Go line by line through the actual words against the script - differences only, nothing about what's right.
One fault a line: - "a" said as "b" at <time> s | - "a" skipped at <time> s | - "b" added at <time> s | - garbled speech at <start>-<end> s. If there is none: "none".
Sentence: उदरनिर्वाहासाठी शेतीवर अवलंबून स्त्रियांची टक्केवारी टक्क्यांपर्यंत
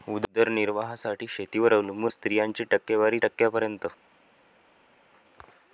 none